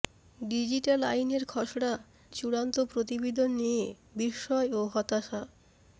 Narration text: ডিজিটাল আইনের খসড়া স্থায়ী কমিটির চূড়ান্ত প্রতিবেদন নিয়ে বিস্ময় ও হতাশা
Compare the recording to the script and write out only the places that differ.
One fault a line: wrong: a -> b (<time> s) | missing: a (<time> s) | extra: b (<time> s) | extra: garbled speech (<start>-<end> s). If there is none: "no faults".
missing: স্থায়ী কমিটির (1.9 s)